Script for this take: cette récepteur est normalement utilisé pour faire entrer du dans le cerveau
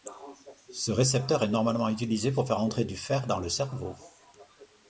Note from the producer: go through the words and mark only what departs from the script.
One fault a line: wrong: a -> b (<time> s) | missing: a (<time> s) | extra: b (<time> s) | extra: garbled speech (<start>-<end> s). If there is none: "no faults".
wrong: cette -> ce (0.7 s)
extra: fer (3.0 s)